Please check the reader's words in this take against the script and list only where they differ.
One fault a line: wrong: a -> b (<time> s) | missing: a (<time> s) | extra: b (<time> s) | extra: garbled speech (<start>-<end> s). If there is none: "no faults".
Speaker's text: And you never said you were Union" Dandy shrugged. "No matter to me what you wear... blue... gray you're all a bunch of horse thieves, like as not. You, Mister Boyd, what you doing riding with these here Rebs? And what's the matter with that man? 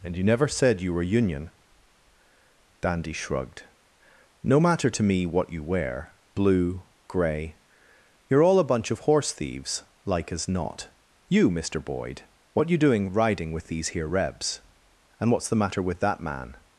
no faults